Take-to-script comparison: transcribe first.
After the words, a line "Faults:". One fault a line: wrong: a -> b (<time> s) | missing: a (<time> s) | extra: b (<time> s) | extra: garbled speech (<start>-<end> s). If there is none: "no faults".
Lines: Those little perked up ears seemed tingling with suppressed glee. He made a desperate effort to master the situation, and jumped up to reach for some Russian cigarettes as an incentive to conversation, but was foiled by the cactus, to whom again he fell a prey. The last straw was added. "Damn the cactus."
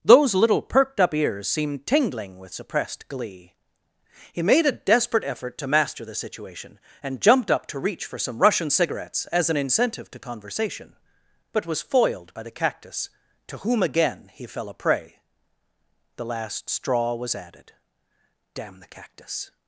Those little perked up ears seemed tingling with suppressed glee. He made a desperate effort to master the situation, and jumped up to reach for some Russian cigarettes as an incentive to conversation, but was foiled by the cactus, to whom again he fell a prey. The last straw was added. "Damn the cactus."
Faults:
no faults